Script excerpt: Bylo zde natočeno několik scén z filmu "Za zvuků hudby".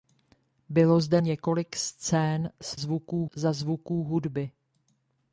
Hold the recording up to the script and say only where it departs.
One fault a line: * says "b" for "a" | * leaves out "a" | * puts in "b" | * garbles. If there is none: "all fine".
* leaves out "natočeno"
* says "zvuků" for "filmu"